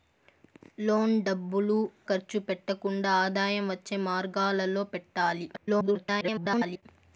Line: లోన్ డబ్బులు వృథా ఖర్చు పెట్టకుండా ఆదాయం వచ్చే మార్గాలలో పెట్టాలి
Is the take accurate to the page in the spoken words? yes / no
no